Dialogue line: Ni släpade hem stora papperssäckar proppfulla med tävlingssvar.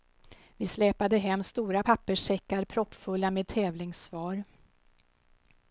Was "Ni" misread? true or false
true